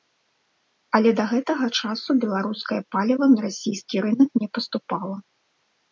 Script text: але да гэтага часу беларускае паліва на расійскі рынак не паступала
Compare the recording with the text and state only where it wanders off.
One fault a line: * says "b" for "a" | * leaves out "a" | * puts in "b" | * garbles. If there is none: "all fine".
all fine